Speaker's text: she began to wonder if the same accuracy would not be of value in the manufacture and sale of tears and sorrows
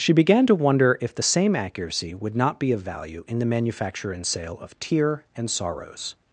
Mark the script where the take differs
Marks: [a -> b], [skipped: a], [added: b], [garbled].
she began to wonder if the same accuracy would not be of value in the manufacture and sale of [tears -> tear] and sorrows